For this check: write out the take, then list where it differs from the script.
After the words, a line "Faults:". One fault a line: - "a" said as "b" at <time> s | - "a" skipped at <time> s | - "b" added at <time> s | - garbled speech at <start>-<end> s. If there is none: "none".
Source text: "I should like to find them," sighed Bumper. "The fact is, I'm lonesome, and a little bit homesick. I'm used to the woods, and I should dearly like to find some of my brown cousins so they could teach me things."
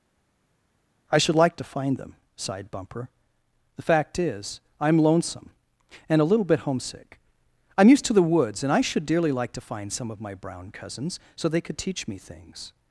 "I should like to find them," sighed Bumper. "The fact is, I'm lonesome, and a little bit homesick. I'm used to the woods, and I should dearly like to find some of my brown cousins so they could teach me things."
Faults:
none